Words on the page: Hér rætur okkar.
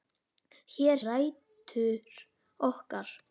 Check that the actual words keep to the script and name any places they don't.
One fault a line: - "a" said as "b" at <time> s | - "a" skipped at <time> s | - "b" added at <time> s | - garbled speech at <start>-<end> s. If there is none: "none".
none